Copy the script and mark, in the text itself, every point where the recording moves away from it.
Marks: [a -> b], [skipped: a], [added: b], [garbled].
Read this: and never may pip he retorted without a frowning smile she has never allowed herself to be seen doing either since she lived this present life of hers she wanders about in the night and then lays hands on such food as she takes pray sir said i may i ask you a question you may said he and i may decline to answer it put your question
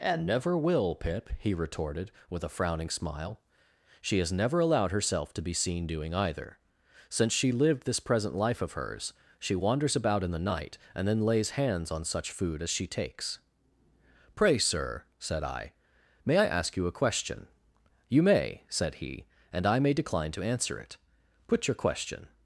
and never [may -> will] pip he retorted [without -> with] a frowning smile she has never allowed herself to be seen doing either since she lived this present life of hers she wanders about in the night and then lays hands on such food as she takes pray sir said i may i ask you a question you may said he and i may decline to answer it put your question